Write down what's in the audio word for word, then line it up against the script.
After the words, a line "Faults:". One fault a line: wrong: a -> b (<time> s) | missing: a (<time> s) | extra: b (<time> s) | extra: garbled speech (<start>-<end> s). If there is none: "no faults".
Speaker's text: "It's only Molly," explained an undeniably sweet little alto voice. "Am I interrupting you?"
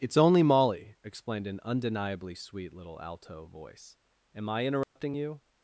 "It's only Molly," explained an undeniably sweet little alto voice. "Am I interrupting you?"
Faults:
no faults